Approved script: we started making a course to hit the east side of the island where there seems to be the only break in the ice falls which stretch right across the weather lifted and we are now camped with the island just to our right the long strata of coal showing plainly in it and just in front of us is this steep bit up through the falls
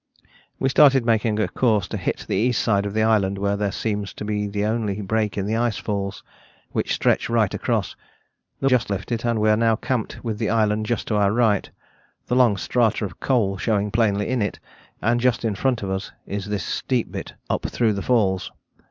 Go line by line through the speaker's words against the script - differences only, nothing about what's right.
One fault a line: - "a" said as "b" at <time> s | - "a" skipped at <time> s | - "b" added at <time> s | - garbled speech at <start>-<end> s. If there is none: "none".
- "weather" said as "just" at 8.6 s